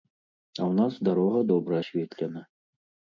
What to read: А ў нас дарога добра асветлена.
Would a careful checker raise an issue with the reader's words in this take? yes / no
no